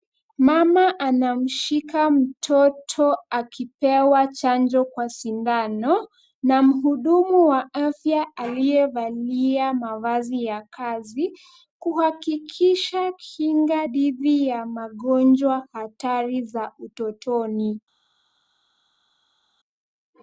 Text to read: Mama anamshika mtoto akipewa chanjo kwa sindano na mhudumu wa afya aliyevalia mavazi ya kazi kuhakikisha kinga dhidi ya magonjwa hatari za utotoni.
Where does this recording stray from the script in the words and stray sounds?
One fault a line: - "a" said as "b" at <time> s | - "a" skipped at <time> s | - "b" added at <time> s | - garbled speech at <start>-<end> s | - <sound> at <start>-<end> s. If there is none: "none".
none